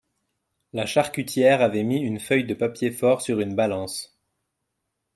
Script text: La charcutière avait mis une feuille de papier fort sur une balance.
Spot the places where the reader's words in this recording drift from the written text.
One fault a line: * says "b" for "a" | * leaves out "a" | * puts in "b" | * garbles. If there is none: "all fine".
all fine